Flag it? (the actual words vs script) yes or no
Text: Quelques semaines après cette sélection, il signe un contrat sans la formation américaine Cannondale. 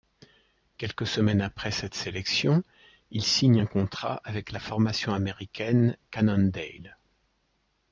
yes